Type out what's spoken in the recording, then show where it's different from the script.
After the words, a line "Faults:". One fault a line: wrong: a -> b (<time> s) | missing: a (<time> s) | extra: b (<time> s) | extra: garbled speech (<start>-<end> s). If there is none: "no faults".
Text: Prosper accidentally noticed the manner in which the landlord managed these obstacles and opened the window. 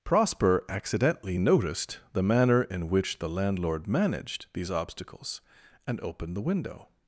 Prosper accidentally noticed the manner in which the landlord managed these obstacles and opened the window.
Faults:
no faults